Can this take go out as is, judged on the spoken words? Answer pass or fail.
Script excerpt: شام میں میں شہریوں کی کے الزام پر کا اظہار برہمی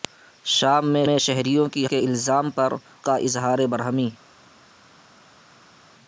pass